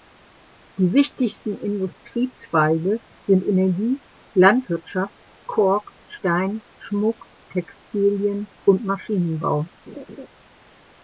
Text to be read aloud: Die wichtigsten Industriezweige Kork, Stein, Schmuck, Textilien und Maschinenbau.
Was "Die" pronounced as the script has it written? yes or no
yes